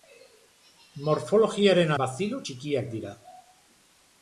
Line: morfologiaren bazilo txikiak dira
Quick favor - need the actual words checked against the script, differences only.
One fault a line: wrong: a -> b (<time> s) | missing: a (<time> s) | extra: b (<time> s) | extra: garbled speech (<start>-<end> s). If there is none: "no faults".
no faults